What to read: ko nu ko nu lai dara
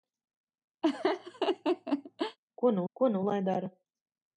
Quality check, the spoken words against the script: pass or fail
pass